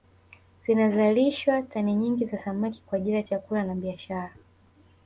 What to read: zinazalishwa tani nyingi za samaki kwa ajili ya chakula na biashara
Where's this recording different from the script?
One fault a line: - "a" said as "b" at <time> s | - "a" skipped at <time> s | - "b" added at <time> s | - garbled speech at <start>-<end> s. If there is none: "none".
none